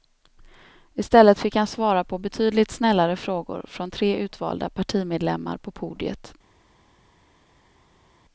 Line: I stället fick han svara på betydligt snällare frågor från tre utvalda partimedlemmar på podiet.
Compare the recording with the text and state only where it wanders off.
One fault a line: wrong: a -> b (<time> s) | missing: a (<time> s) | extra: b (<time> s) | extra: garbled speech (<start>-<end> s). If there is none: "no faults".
no faults